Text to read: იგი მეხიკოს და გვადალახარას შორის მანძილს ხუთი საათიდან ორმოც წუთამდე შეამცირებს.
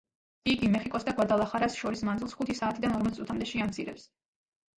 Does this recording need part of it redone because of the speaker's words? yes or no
no